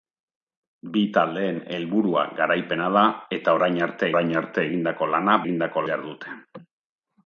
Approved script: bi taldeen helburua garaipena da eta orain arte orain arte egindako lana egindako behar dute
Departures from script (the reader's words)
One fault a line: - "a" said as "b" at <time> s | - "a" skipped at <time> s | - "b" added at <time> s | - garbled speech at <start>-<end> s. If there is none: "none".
none